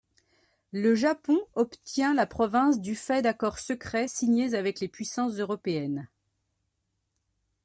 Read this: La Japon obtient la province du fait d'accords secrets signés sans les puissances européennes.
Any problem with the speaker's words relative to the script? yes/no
yes